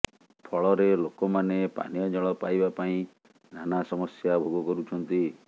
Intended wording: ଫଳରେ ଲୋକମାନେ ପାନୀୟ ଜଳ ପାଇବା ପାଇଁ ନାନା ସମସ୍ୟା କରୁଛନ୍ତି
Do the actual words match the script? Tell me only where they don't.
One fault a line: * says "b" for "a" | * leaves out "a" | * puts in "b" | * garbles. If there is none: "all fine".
* puts in "ଭୋଗ"